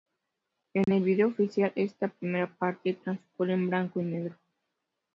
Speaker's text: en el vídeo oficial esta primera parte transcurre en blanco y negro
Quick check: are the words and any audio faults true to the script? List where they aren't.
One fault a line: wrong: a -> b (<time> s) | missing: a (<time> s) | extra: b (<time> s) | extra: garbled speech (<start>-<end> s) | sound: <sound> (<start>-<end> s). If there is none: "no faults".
sound: dropout (0.8-0.9 s)